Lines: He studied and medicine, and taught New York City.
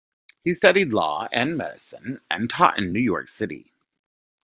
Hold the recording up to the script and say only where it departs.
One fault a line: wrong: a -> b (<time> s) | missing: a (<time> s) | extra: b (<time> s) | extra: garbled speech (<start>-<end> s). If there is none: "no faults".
extra: law (0.9 s)
extra: in (2.8 s)